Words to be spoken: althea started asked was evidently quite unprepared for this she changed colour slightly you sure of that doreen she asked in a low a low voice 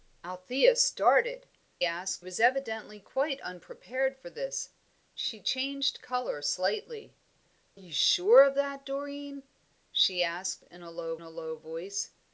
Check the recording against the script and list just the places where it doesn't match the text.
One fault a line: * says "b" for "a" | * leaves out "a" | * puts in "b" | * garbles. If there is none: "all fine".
all fine